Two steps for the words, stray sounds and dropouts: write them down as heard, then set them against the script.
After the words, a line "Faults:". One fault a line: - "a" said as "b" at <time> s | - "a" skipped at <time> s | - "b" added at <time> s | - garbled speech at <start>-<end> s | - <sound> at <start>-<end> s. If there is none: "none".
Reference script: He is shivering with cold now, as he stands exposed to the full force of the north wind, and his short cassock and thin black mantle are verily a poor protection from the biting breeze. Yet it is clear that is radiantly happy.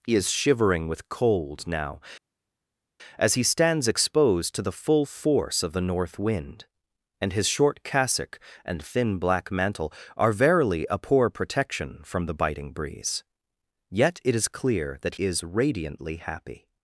He is shivering with cold now, as he stands exposed to the full force of the north wind, and his short cassock and thin black mantle are verily a poor protection from the biting breeze. Yet it is clear that is radiantly happy.
Faults:
none